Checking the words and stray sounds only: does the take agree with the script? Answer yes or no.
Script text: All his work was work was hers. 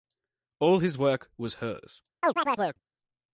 no